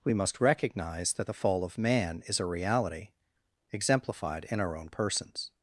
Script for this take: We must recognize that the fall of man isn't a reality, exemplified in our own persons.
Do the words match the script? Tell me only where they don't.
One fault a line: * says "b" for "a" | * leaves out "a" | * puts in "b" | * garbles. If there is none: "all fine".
* says "is" for "isn't"